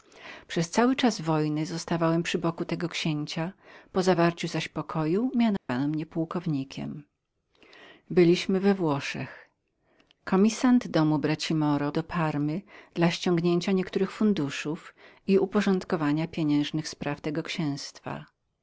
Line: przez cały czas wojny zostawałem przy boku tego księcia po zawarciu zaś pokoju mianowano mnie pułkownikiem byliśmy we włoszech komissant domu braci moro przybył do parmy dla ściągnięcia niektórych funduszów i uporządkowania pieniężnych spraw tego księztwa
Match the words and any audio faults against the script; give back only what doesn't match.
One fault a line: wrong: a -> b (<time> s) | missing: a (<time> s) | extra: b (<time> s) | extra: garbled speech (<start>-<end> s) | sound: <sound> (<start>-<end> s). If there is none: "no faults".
sound: dropout (5.6-5.7 s)
missing: przybył (11.9 s)